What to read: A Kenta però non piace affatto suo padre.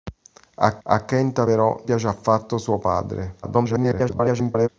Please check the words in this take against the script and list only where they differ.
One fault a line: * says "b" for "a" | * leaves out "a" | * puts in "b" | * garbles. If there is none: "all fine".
* puts in "a"
* leaves out "non"
* garbles